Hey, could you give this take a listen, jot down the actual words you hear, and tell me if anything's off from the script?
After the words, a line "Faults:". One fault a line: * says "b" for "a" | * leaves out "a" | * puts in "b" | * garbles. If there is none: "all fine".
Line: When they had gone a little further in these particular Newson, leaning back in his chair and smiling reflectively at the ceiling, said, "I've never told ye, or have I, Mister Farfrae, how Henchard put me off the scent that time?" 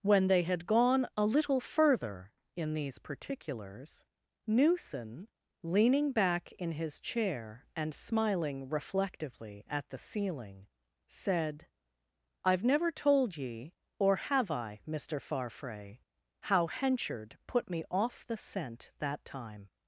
When they had gone a little further in these particulars Newson, leaning back in his chair and smiling reflectively at the ceiling, said, "I've never told ye, or have I, Mister Farfrae, how Henchard put me off the scent that time?"
Faults:
* says "particulars" for "particular"